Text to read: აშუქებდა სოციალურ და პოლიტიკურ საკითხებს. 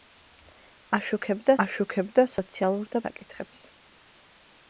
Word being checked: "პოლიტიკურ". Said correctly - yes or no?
no